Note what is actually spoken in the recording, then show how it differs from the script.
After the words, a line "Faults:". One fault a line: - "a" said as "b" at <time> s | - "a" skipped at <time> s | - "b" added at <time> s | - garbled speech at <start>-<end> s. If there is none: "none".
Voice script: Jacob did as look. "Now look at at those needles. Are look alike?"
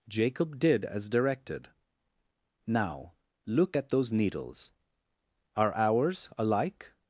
Jacob did as directed. "Now look at those needles. Are ours alike?"
Faults:
- "look" said as "directed" at 1.1 s
- "at" skipped at 3.9 s
- "look" said as "ours" at 5.7 s